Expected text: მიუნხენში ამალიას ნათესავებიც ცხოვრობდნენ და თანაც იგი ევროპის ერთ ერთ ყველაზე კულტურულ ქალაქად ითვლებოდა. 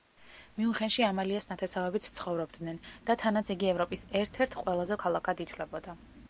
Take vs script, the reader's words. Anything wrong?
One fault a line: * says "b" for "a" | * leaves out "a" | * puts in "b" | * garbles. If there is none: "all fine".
* leaves out "კულტურულ"